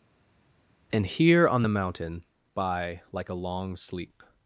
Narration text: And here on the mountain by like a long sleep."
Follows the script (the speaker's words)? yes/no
yes